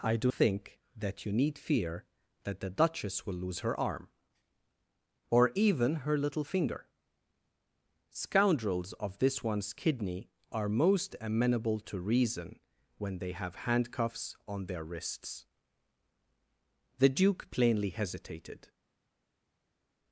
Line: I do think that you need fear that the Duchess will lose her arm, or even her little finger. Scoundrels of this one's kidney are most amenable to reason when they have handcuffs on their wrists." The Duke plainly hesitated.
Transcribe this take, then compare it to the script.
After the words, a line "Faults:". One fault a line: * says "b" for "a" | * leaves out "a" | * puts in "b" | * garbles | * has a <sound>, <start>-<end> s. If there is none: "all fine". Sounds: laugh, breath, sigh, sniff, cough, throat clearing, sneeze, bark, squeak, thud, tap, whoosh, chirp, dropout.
I do think that you need fear that the Duchess will lose her arm, or even her little finger. Scoundrels of this one's kidney are most amenable to reason when they have handcuffs on their wrists." The Duke plainly hesitated.
Faults:
all fine